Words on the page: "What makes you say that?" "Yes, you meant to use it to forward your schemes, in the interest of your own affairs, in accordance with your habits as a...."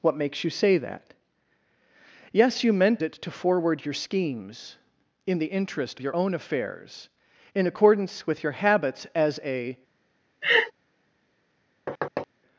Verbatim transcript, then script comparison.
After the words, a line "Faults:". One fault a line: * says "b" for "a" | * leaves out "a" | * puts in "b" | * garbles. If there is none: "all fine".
"What makes you say that?" "Yes, you meant it to forward your schemes, in the interest your own affairs, in accordance with your habits as a...."
Faults:
* leaves out "to use"
* leaves out "of"